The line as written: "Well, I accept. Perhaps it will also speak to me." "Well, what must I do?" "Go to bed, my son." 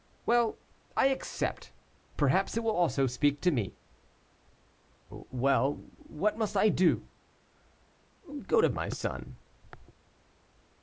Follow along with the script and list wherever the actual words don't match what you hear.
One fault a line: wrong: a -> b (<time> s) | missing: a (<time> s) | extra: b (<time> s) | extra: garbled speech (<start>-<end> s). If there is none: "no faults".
missing: bed (8.7 s)